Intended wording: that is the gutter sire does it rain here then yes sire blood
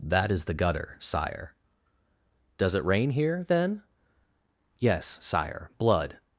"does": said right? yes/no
yes